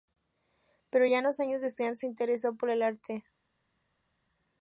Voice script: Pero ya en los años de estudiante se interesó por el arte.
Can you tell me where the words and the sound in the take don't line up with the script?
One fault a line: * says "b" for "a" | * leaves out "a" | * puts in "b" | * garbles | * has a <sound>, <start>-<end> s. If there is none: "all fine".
all fine